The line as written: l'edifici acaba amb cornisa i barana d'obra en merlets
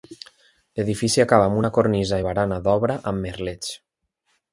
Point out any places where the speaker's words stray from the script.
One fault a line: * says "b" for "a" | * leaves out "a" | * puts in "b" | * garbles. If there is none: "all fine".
* puts in "una"
* says "amb" for "en"